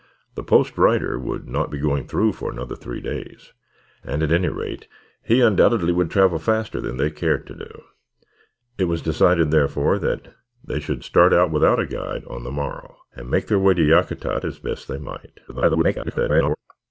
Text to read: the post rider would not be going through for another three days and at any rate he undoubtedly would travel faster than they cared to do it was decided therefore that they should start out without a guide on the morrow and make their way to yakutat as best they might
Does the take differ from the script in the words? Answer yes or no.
yes